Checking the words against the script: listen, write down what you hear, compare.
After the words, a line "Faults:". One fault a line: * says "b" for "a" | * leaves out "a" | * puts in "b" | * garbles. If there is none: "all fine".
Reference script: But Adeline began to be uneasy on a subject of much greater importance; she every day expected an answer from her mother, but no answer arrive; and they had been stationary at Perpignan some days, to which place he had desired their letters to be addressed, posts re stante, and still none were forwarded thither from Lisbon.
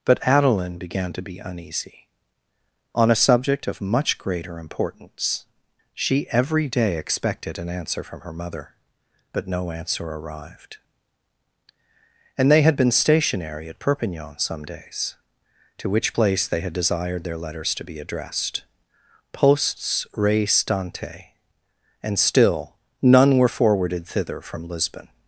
But Adeline began to be uneasy on a subject of much greater importance; she every day expected an answer from her mother, but no answer arrived; and they had been stationary at Perpignan some days, to which place they had desired their letters to be addressed, posts re stante, and still none were forwarded thither from Lisbon.
Faults:
* says "arrived" for "arrive"
* says "they" for "he"